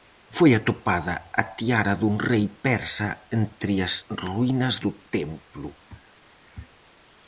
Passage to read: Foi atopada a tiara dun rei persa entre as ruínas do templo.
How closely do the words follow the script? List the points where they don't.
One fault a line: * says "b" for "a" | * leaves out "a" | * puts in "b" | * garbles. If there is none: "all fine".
all fine